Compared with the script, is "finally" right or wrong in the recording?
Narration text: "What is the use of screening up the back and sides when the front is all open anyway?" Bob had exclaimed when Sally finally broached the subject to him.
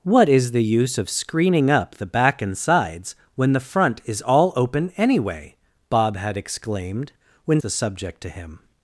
wrong